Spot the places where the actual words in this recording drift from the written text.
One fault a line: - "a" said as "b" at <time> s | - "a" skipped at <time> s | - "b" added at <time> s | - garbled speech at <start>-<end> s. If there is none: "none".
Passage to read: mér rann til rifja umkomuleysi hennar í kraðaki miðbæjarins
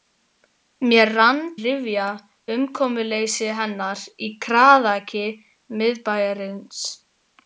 - "til" skipped at 1.4 s